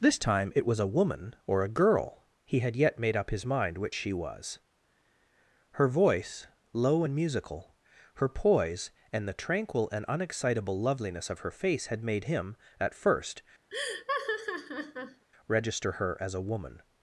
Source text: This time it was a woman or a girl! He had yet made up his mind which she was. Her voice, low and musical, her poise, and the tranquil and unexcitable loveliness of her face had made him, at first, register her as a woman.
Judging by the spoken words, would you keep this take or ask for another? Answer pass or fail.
pass